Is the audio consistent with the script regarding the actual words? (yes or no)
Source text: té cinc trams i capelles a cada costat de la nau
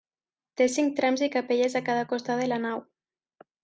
yes